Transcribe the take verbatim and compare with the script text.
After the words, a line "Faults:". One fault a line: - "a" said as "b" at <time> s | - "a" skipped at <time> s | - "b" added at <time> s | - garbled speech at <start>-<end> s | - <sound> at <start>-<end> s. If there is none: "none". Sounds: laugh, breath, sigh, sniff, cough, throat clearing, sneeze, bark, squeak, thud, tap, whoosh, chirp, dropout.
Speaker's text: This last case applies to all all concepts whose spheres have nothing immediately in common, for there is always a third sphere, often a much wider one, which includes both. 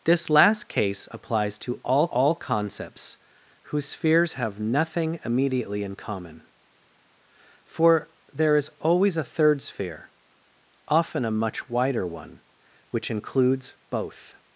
This last case applies to all all concepts whose spheres have nothing immediately in common, for there is always a third sphere, often a much wider one, which includes both.
Faults:
none